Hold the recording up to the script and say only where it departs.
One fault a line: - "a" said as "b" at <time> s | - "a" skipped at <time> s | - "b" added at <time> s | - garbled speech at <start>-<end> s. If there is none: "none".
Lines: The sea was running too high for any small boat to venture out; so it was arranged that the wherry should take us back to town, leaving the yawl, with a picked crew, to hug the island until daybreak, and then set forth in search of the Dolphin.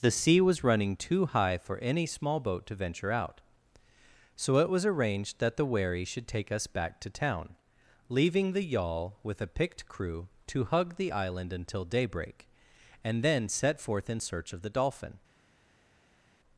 none